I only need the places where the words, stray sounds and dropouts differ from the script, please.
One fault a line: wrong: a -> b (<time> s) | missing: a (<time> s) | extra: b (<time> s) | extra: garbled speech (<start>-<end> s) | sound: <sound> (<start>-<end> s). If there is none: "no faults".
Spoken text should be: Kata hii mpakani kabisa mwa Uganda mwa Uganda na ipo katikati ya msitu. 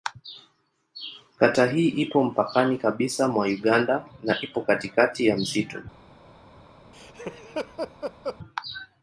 extra: ipo (1.9 s)
missing: mwa Uganda (4.0 s)
sound: laugh (6.9-8.4 s)